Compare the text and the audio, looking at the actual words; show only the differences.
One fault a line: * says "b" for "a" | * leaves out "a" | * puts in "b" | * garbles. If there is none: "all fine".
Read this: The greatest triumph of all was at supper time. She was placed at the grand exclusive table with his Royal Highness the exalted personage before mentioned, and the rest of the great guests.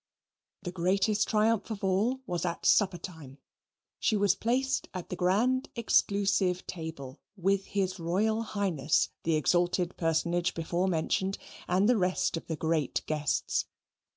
all fine